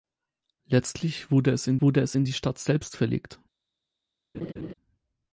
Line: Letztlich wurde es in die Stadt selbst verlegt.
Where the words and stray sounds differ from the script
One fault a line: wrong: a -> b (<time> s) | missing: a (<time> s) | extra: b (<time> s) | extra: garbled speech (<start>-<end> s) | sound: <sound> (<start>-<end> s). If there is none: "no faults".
extra: wurde es in (1.8 s)
sound: laugh (4.3-4.7 s)